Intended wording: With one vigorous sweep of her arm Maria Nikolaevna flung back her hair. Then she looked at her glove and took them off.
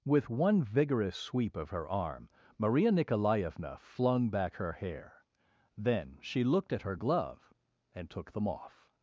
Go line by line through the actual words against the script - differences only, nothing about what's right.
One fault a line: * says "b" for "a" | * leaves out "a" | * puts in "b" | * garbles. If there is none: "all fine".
all fine